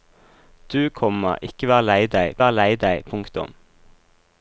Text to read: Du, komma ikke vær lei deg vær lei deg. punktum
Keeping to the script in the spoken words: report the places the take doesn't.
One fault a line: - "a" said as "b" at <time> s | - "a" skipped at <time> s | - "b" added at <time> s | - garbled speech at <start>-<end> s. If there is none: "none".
none